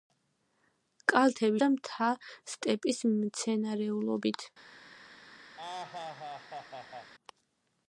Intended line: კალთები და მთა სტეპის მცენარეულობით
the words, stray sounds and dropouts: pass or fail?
fail